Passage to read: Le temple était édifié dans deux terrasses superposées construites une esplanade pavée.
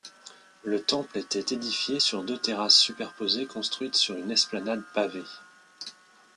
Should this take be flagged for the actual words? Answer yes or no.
yes